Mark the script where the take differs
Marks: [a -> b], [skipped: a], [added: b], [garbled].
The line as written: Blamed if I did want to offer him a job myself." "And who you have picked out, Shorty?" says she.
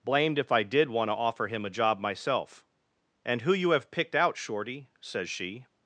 Blamed if I did want to offer him a job myself." "And who you have picked out, Shorty?" says she.